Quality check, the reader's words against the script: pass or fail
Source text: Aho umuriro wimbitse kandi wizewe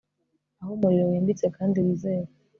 pass